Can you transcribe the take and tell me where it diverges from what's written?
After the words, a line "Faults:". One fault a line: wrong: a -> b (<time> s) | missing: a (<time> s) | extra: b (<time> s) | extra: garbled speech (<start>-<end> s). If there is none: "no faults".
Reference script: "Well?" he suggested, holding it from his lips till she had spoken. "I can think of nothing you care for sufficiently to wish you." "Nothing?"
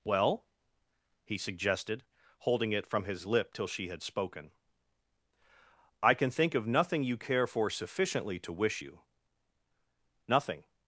"Well?" he suggested, holding it from his lip till she had spoken. "I can think of nothing you care for sufficiently to wish you." "Nothing?"
Faults:
wrong: lips -> lip (3.2 s)